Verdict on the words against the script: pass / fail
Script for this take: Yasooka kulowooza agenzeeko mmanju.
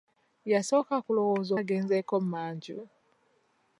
pass